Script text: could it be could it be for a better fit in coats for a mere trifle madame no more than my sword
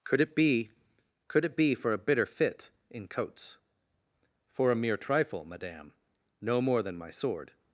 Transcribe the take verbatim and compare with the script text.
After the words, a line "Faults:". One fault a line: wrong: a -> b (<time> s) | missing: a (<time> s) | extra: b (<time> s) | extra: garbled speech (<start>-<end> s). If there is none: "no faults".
could it be could it be for a bitter fit in coats for a mere trifle madame no more than my sword
Faults:
wrong: better -> bitter (2.0 s)